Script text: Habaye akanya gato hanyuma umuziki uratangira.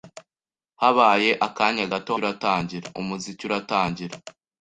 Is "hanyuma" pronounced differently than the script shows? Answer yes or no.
yes